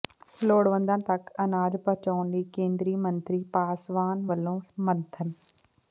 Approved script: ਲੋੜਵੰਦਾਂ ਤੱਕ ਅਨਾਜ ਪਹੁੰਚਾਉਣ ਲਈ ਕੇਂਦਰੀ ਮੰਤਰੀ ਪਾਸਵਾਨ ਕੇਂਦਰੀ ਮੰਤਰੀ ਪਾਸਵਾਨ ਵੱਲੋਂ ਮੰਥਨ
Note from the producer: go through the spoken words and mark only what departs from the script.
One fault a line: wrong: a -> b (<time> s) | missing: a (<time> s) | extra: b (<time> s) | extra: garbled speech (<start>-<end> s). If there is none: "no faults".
missing: ਕੇਂਦਰੀ ਮੰਤਰੀ ਪਾਸਵਾਨ (4.2 s)